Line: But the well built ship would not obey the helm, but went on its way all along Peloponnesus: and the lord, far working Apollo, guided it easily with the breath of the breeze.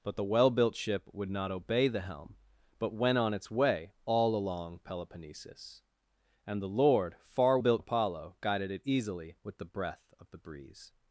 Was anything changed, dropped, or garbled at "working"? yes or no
yes